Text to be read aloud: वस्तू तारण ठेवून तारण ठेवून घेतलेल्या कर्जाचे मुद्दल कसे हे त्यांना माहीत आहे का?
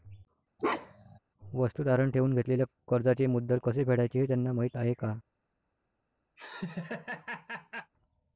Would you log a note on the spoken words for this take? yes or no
yes